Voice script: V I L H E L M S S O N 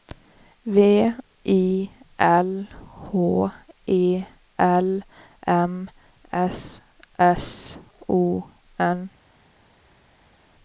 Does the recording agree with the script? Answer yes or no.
yes